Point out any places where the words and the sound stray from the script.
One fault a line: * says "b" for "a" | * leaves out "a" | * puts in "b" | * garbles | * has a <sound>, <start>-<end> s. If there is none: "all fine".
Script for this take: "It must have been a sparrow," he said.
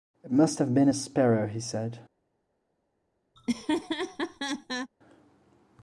* has a laugh, 3.4-4.9 s